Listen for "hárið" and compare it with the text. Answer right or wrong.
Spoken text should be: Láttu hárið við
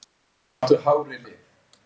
right